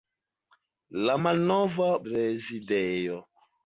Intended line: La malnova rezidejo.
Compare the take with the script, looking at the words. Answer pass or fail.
pass